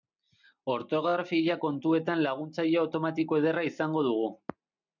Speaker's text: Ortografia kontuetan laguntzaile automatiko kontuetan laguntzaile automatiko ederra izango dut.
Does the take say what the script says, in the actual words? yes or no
no